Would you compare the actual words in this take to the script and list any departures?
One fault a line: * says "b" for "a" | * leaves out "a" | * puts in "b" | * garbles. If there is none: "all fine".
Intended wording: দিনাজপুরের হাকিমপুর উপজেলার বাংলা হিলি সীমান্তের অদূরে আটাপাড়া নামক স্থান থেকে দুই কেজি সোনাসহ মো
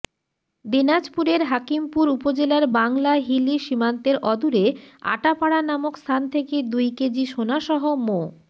all fine